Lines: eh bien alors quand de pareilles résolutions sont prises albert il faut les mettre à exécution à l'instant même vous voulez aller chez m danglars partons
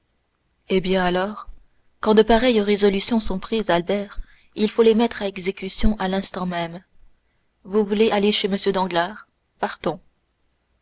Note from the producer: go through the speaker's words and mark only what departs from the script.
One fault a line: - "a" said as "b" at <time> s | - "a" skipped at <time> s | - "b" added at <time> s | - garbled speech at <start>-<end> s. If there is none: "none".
none